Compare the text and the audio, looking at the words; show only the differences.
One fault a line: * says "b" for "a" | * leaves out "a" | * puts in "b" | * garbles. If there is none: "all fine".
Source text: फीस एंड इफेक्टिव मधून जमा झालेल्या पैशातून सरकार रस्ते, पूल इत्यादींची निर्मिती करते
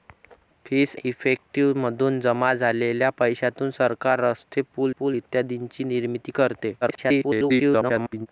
* leaves out "एंड"
* puts in "पूल"
* garbles